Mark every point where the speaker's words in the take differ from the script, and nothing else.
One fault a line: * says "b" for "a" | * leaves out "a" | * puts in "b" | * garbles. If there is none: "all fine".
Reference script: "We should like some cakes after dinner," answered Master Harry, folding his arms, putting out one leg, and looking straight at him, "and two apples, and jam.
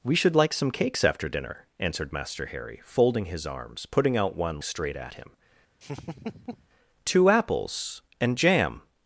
* leaves out "leg and looking"
* leaves out "and"